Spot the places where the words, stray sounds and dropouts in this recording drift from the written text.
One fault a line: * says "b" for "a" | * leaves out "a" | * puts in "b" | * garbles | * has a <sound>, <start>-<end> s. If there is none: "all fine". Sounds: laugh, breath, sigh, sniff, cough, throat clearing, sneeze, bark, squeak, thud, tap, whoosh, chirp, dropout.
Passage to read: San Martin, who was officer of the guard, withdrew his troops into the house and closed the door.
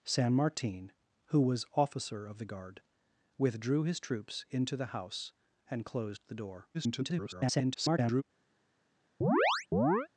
* garbles
* has a chirp, 9.2-10.1 s